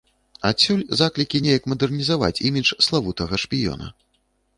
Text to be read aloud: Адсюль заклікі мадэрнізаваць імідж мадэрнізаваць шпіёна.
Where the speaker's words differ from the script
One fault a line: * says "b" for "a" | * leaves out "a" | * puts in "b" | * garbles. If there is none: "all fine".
* puts in "неяк"
* says "славутага" for "мадэрнізаваць"